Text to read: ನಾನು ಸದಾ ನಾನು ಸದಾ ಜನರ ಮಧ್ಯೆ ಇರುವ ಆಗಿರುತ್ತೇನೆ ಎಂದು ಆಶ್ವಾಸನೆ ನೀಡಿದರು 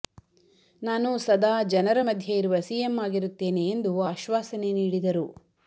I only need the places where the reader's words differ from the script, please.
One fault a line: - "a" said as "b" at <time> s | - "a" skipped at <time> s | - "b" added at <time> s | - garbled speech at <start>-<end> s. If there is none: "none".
- "ನಾನು ಸದಾ" skipped at 1.6 s
- "ಸಿಎಂ" added at 2.6 s